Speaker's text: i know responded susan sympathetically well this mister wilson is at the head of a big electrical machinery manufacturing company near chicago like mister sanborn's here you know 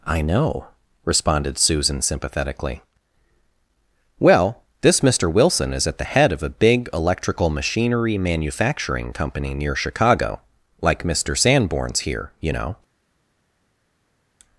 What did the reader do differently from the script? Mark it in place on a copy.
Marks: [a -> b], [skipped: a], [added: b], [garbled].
i know responded susan sympathetically well this mister wilson is at the head of a big electrical machinery manufacturing company near chicago like mister sanborn's here you know